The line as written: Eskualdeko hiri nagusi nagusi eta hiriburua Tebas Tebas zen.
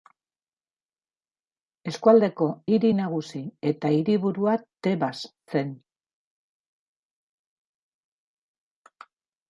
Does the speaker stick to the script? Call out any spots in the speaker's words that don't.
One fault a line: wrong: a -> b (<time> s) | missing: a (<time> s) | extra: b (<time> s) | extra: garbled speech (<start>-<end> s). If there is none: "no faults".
missing: nagusi (3.4 s)
missing: Tebas (5.1 s)